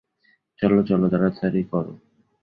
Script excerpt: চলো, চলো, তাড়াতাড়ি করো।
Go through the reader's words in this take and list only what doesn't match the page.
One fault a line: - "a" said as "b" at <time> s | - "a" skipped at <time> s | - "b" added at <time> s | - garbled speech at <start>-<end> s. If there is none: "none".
none